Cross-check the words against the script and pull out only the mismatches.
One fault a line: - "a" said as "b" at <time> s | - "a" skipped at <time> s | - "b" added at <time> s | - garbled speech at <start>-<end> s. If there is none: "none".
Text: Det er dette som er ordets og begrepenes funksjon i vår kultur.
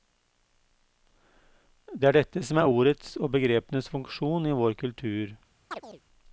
none